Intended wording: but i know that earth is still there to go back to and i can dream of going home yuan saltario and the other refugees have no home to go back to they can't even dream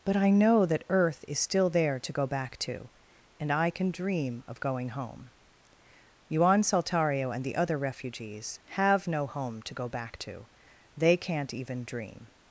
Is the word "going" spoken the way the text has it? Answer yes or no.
yes